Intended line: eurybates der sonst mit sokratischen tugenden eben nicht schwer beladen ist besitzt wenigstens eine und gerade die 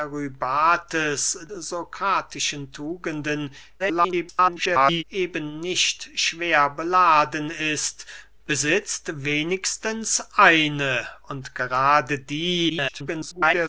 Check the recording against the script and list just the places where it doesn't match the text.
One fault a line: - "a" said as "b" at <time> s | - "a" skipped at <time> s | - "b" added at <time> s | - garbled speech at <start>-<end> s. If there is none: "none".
- "der sonst mit" skipped at 1.4 s
- garbled speech at 3.8-5.0 s
- garbled speech at 12.7-13.7 s